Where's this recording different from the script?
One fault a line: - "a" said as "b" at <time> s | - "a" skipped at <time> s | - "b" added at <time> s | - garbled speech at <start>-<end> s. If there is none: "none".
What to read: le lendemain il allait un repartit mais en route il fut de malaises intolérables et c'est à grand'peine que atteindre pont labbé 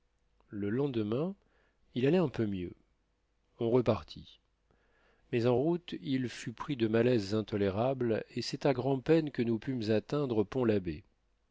- "peu mieux on" added at 2.3 s
- "pris" added at 6.5 s
- "nous pûmes" added at 9.4 s